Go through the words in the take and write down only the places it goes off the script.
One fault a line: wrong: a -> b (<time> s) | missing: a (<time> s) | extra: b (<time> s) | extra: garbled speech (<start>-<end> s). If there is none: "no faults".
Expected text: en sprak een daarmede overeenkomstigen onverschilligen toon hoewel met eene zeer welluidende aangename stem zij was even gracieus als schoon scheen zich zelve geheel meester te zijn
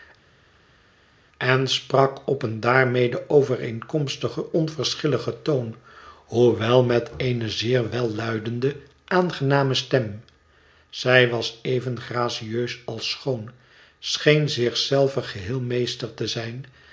extra: op (2.3 s)